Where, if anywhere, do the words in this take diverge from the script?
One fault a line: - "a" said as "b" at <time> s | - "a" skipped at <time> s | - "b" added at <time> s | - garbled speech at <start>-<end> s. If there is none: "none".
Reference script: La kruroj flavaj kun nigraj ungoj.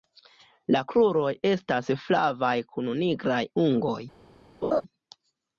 - "estas" added at 1.5 s